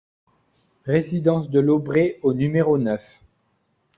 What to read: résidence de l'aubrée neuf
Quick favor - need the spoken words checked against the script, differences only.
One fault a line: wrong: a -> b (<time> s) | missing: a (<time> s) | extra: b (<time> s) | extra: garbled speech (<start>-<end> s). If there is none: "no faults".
extra: au numéro (2.2 s)